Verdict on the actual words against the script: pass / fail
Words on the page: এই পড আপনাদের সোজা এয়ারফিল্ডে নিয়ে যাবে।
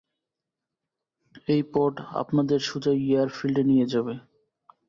pass